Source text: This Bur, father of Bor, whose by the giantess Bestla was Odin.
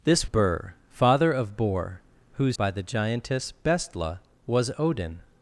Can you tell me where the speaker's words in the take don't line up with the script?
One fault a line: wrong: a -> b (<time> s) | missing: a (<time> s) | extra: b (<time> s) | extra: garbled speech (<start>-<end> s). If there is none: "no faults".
no faults